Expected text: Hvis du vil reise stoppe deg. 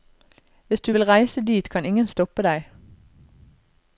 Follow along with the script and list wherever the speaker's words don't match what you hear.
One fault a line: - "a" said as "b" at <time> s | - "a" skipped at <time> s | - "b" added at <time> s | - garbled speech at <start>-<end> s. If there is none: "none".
- "dit kan ingen" added at 1.5 s